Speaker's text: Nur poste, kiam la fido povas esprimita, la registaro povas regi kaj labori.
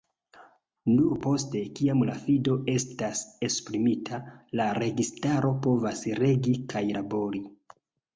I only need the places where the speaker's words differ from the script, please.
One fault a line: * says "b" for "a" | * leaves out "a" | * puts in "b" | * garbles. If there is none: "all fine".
* says "estas" for "povas"